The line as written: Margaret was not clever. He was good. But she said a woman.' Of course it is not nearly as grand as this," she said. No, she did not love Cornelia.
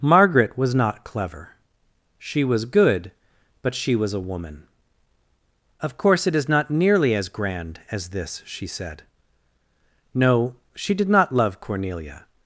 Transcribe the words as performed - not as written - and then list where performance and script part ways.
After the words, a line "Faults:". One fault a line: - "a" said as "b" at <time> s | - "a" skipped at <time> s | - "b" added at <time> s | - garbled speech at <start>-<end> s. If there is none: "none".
Margaret was not clever. She was good. But she was a woman.' Of course it is not nearly as grand as this," she said. No, she did not love Cornelia.
Faults:
- "He" said as "She" at 2.2 s
- "said" said as "was" at 4.0 s